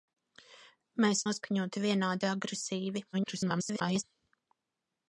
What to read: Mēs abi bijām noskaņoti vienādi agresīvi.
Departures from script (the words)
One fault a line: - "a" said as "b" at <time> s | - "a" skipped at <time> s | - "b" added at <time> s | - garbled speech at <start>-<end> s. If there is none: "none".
- "abi bijām" skipped at 1.2 s
- garbled speech at 3.1-4.0 s